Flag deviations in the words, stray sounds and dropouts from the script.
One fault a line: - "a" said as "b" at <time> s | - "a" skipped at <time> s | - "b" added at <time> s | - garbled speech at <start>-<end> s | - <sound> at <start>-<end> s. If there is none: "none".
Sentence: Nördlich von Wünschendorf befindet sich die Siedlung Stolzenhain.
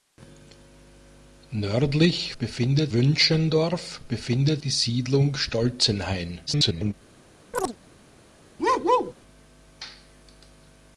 - "von" said as "befindet" at 2.4 s
- "sich" skipped at 4.6 s
- garbled speech at 6.5-6.9 s
- chirp at 7.5-7.8 s
- bark at 8.6-9.1 s